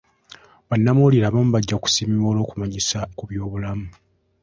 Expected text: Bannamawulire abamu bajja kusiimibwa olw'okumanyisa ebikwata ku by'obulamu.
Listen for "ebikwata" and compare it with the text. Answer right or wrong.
wrong